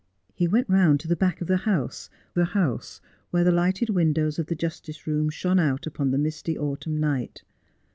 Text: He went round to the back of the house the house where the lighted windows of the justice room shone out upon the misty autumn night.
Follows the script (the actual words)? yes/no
yes